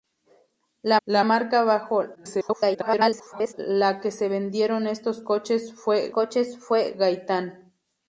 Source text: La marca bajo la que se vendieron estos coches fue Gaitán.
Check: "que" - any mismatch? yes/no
no